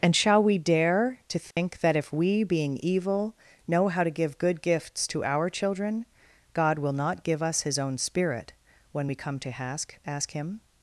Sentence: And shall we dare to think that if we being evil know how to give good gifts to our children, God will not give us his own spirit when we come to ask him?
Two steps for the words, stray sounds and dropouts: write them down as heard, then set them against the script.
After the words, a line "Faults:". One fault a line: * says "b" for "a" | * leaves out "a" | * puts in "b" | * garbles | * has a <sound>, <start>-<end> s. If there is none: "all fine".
And shall we dare to think that if we being evil know how to give good gifts to our children, God will not give us his own spirit when we come to ask ask him?
Faults:
* has a dropout, 1.5-1.6 s
* puts in "ask"